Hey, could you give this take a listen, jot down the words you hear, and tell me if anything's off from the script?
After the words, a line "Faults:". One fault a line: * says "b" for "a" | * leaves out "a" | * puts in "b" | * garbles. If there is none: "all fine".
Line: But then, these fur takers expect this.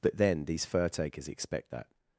But then, these fur takers expect that.
Faults:
* says "that" for "this"